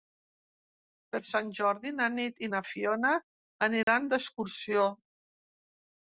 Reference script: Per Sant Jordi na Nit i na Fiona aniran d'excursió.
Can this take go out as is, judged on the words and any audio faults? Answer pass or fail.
fail